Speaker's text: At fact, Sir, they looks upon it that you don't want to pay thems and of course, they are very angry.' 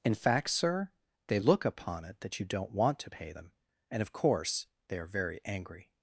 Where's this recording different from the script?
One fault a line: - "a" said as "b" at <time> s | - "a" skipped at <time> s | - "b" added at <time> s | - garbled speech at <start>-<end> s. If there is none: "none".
- "At" said as "In" at 0.0 s
- "looks" said as "look" at 1.4 s
- "thems" said as "them" at 3.3 s